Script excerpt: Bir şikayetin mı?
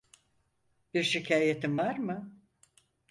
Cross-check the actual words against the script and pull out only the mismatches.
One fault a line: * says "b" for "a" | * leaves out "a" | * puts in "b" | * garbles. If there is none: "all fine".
* puts in "var"